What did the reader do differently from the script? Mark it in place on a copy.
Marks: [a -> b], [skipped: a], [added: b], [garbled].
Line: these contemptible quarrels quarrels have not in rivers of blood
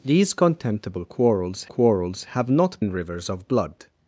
these contemptible quarrels quarrels have not in rivers of blood